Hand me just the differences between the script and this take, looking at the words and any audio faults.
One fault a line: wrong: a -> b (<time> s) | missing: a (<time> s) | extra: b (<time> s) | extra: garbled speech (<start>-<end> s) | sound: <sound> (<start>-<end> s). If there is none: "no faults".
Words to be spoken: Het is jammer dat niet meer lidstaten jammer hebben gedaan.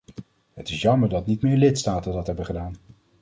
wrong: jammer -> dat (2.1 s)